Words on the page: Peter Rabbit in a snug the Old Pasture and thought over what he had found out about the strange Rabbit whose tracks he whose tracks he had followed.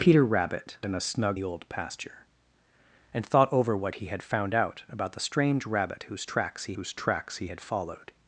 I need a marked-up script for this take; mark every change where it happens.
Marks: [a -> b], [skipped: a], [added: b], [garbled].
Peter Rabbit in a snug the Old Pasture and thought over what he had found out about the strange Rabbit whose tracks he whose tracks he had followed.